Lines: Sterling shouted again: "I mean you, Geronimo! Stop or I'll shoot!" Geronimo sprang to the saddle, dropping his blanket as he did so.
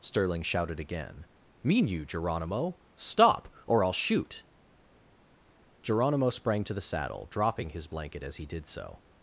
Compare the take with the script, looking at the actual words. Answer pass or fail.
fail